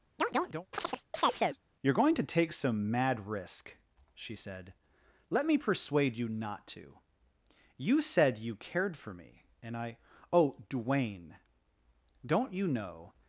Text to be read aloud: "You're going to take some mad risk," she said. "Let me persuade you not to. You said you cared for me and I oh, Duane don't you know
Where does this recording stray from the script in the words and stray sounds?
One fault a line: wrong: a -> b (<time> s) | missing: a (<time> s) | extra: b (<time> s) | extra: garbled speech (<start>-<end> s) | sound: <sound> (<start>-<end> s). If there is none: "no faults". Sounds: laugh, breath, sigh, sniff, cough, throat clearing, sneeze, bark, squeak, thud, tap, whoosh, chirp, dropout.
sound: chirp (0.2-1.6 s)